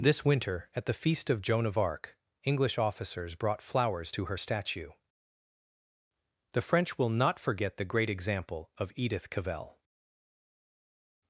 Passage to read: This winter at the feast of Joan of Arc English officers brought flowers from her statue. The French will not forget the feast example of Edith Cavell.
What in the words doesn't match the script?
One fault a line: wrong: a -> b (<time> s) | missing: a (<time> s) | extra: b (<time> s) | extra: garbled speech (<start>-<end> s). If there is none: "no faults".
wrong: from -> to (4.1 s)
wrong: feast -> great (7.8 s)